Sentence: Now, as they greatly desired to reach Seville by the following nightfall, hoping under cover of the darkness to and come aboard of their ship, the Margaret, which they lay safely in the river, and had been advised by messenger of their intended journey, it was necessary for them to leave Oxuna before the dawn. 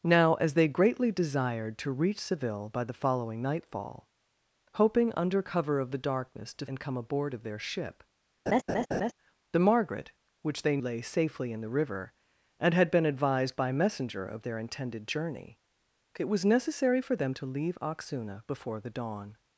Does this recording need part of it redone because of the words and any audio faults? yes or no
yes